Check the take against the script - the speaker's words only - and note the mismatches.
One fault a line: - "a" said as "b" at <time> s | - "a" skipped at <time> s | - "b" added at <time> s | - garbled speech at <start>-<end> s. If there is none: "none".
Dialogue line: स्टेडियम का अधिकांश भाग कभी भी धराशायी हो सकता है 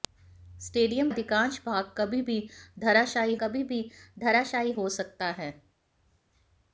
- "का" skipped at 1.1 s
- "कभी भी धराशायी" added at 3.4 s